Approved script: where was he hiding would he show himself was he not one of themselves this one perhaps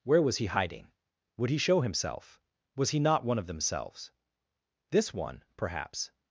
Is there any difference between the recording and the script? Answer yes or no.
no